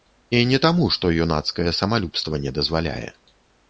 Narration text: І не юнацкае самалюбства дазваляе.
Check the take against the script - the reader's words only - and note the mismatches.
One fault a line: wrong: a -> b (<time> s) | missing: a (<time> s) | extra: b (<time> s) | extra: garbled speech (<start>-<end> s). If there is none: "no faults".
extra: таму што (0.6 s)
extra: не (2.5 s)